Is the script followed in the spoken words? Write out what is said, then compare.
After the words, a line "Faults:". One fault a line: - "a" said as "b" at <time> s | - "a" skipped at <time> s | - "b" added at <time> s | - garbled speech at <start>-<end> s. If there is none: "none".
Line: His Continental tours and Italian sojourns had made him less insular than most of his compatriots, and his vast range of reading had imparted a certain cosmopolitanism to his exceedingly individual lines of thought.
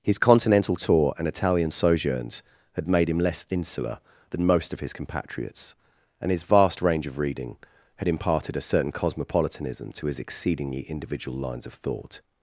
His Continental tour and Italian sojourns had made him less insular than most of his compatriots, and his vast range of reading had imparted a certain cosmopolitanism to his exceedingly individual lines of thought.
Faults:
- "tours" said as "tour" at 0.8 s